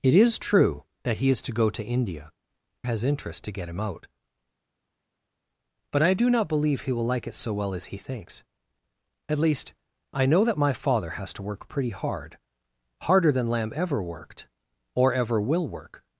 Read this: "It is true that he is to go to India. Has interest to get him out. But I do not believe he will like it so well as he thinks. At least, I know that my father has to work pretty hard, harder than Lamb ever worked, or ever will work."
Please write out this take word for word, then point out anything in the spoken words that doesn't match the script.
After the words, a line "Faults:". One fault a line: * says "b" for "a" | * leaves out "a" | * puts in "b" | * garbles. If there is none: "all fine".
"It is true that he is to go to India. Has interest to get him out. But I do not believe he will like it so well as he thinks. At least, I know that my father has to work pretty hard, harder than Lamb ever worked, or ever will work."
Faults:
all fine